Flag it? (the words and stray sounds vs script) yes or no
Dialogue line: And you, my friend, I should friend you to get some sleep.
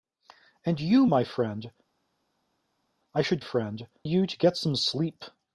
no